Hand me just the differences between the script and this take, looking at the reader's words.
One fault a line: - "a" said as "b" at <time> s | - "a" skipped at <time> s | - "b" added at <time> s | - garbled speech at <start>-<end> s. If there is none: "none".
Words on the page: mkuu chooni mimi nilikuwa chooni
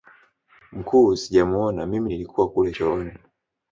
- "chooni" said as "sijamuona" at 1.1 s
- "kule" added at 2.5 s